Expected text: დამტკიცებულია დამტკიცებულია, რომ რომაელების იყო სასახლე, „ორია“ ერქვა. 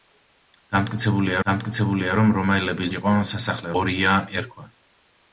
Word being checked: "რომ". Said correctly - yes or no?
yes